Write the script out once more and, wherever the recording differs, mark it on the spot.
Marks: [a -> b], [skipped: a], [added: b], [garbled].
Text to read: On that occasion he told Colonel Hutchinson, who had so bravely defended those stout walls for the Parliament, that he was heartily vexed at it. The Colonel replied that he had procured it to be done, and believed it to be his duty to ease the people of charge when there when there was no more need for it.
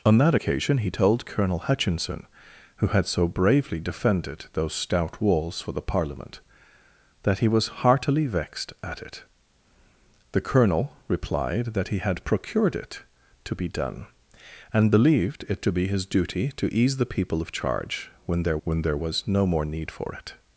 On that occasion he told Colonel Hutchinson, who had so bravely defended those stout walls for the Parliament, that he was heartily vexed at it. The Colonel replied that he had procured it to be done, and believed it to be his duty to ease the people of charge when there when there was no more need for it.